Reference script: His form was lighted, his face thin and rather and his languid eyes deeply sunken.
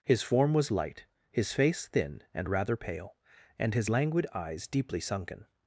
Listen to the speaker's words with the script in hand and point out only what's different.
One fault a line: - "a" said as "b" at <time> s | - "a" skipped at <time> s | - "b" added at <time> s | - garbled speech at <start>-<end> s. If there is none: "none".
- "lighted" said as "light" at 0.7 s
- "pale" added at 2.8 s